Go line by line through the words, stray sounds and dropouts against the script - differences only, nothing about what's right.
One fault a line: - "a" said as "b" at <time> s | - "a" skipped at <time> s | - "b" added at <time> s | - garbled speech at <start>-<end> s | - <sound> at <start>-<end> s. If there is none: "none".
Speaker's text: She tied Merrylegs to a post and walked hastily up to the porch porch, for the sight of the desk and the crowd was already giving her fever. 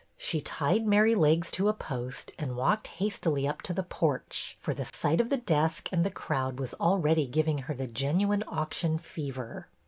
- "porch" skipped at 4.5 s
- dropout at 4.9-4.9 s
- "the genuine auction" added at 7.7 s